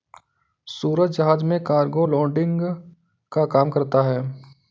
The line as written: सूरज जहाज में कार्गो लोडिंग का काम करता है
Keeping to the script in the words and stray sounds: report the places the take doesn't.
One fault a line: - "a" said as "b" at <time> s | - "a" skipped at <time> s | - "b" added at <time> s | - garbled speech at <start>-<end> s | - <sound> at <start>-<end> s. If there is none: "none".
none